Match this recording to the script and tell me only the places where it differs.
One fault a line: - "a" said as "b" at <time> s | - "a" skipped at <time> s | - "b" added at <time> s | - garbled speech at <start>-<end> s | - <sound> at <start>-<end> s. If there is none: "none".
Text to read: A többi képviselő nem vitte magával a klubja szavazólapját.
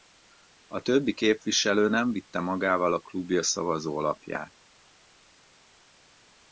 none